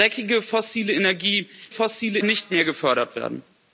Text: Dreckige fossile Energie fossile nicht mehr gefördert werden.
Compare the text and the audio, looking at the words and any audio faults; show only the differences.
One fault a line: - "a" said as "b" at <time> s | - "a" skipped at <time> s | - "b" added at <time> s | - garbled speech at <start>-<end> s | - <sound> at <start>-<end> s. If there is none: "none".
none